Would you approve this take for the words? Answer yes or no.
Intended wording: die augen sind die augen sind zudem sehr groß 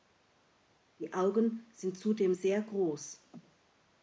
no